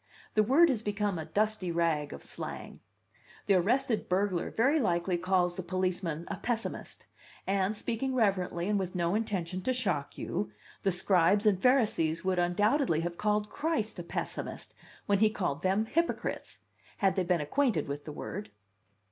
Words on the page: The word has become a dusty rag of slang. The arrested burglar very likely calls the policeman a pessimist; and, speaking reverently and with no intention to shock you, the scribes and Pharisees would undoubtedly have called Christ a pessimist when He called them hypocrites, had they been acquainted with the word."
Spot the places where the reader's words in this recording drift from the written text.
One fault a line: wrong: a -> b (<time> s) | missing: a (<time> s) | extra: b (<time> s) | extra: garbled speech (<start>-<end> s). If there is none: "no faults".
no faults